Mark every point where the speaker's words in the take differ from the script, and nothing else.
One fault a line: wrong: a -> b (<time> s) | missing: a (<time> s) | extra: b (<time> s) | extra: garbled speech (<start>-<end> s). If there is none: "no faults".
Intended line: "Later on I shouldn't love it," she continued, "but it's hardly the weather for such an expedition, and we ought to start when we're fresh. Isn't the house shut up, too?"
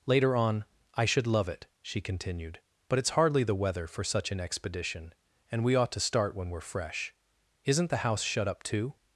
wrong: shouldn't -> should (1.1 s)